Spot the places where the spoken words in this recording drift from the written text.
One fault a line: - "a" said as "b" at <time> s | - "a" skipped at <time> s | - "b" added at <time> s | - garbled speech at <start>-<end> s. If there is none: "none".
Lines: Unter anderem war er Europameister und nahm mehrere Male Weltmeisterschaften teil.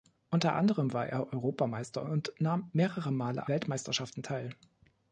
none